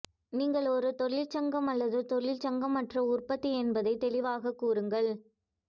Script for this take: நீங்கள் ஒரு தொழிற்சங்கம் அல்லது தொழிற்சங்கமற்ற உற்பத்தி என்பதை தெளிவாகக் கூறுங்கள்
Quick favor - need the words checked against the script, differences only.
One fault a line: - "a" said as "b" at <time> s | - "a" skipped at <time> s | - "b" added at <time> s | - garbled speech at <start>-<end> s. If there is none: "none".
none